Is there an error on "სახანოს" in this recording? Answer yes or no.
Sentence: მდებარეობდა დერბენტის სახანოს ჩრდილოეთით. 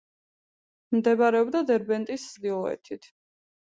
yes